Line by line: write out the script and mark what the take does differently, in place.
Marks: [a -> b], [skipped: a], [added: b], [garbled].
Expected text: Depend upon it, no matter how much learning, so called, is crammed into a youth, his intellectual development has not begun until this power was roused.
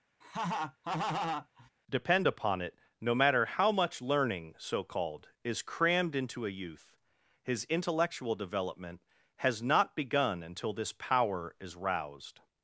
Depend upon it, no matter how much learning, so called, is crammed into a youth, his intellectual development has not begun until this power [was -> is] roused.